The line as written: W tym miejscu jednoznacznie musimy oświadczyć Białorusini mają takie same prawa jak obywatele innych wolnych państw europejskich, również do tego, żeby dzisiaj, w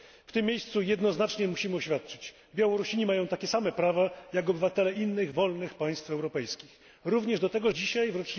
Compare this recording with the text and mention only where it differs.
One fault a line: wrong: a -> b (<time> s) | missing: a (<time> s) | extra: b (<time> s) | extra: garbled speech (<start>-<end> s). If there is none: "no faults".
missing: żeby (7.7 s)